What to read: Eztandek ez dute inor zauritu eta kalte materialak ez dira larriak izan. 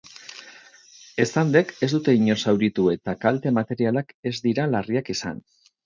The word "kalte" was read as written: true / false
true